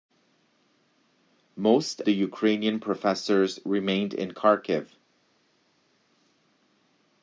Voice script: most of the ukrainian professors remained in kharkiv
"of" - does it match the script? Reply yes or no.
no